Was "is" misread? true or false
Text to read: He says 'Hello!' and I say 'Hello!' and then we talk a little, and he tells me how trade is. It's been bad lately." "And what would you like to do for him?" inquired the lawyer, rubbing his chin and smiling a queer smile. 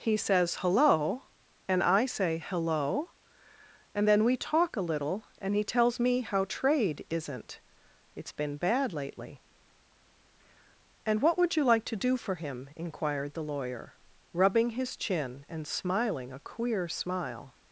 true